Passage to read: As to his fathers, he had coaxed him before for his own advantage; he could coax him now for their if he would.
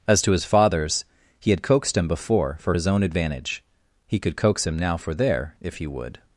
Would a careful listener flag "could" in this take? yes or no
no